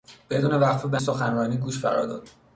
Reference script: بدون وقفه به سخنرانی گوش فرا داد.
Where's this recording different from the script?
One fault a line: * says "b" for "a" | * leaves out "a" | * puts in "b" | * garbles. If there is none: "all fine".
all fine